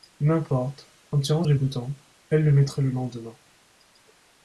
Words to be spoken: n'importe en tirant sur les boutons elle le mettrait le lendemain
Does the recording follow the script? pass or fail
fail